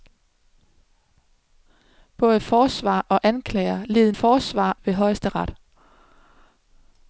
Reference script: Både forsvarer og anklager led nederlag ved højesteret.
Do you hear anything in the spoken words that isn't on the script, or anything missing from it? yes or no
yes